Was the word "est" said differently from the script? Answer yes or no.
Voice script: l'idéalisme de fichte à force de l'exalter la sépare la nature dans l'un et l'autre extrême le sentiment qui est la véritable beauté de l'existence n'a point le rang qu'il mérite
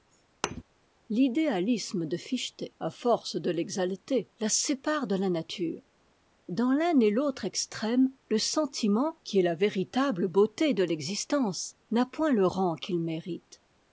no